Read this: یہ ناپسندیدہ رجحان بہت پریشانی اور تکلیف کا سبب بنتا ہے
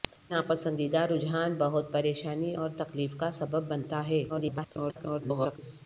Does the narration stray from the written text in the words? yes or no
yes